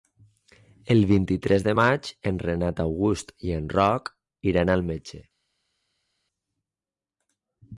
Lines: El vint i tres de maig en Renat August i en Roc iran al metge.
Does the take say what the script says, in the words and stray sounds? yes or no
yes